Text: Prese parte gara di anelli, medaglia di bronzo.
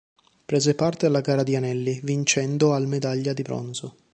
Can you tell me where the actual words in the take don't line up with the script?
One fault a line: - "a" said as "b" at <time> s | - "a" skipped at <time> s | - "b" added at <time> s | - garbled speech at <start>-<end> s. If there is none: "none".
- "alla" added at 1.1 s
- "vincendo al" added at 2.0 s